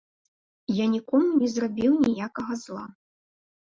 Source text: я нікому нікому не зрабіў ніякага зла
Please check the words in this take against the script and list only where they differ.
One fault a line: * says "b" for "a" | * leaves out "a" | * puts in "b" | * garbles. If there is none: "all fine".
* leaves out "нікому"